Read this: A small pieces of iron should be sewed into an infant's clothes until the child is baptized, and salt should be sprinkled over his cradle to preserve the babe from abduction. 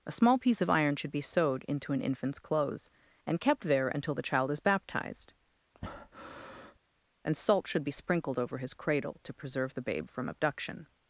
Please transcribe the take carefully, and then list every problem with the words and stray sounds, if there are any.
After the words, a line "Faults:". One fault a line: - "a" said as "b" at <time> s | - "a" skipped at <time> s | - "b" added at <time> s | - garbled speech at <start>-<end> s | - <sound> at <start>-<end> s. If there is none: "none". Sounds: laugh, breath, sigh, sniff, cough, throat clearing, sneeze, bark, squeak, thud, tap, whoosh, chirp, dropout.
A small piece of iron should be sewed into an infant's clothes and kept there until the child is baptized, and salt should be sprinkled over his cradle to preserve the babe from abduction.
Faults:
- "pieces" said as "piece" at 0.4 s
- "and kept there" added at 3.3 s
- breath at 5.7-6.8 s